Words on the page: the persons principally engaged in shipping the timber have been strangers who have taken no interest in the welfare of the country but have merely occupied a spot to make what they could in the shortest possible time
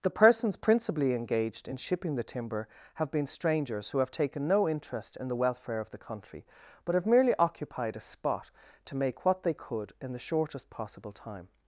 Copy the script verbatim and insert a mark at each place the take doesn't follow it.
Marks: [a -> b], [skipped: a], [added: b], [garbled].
the persons principally engaged in shipping the timber have been strangers who have taken no interest in the welfare of the country but have merely occupied a spot to make what they could in the shortest possible time